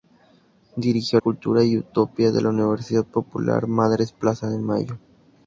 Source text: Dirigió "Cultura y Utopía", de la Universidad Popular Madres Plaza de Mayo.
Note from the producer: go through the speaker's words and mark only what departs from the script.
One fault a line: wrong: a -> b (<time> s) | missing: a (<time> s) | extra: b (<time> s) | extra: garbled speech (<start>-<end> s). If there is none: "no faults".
no faults